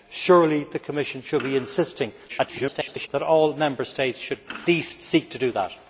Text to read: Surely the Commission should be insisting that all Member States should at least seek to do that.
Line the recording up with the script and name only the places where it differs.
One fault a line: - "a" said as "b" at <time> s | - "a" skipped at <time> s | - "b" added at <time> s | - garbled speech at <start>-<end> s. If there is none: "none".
- garbled speech at 2.3-3.1 s
- "at" skipped at 4.4 s